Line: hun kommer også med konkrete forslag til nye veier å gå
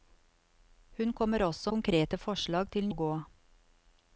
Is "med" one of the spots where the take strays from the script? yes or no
yes